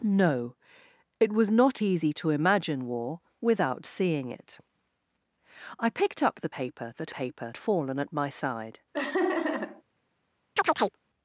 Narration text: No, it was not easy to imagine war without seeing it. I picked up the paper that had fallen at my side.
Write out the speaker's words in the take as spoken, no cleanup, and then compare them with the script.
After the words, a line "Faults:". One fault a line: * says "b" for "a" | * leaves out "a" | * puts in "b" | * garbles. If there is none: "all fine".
No, it was not easy to imagine war without seeing it. I picked up the paper that paper fallen at my side.
Faults:
* says "paper" for "had"